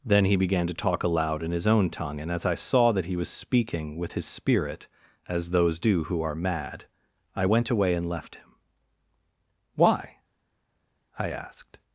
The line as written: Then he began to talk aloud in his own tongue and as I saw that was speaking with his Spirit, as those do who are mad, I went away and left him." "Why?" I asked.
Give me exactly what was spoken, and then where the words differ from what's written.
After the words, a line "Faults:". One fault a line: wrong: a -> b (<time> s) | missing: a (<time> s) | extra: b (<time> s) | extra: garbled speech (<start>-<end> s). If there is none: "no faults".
Then he began to talk aloud in his own tongue and as I saw that he was speaking with his Spirit, as those do who are mad, I went away and left him." "Why?" I asked.
Faults:
extra: he (3.0 s)